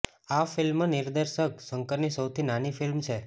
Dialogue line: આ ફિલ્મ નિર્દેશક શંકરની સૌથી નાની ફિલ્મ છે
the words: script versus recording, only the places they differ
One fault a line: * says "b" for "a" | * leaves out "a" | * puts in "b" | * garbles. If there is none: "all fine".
all fine